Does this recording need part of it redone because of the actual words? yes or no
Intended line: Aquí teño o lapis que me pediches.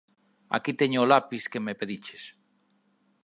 no